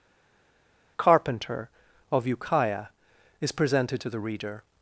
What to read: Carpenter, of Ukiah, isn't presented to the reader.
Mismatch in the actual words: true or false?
true